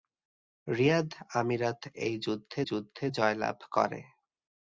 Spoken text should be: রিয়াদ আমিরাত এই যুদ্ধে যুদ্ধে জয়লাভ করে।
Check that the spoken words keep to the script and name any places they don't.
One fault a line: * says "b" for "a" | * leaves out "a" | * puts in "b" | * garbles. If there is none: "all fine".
all fine